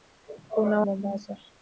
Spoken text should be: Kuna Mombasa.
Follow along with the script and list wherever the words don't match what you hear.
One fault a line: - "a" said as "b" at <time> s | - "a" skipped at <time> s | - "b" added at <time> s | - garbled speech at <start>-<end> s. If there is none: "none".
none